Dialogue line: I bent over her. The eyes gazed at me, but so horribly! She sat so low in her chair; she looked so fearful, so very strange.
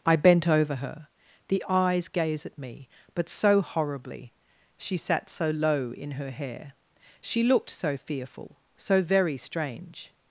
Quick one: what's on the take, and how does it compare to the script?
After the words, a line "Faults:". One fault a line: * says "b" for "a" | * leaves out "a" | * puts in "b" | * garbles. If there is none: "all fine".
I bent over her. The eyes gaze at me, but so horribly! She sat so low in her hair; she looked so fearful, so very strange.
Faults:
* says "gaze" for "gazed"
* says "hair" for "chair"